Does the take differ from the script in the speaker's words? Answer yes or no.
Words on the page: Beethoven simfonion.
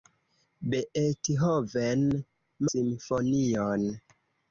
no